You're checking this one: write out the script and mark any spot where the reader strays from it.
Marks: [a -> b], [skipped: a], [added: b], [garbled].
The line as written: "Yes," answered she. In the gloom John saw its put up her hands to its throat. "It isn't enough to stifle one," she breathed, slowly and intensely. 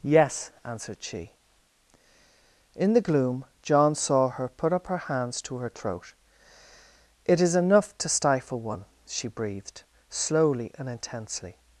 "Yes," answered she. In the gloom John saw [its -> her] put up her hands to [its -> her] throat. "It [isn't -> is] enough to stifle one," she breathed, slowly and intensely.